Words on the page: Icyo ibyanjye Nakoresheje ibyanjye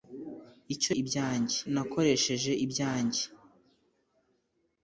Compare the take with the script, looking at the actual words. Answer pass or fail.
pass